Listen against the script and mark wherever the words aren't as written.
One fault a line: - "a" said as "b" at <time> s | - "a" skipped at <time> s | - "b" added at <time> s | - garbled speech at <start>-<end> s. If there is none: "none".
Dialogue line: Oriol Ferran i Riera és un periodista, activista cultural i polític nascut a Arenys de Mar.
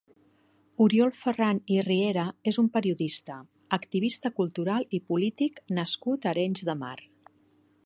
none